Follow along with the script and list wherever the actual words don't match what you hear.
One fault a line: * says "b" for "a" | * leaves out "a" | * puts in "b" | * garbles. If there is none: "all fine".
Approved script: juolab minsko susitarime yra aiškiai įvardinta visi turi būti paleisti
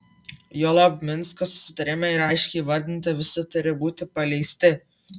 all fine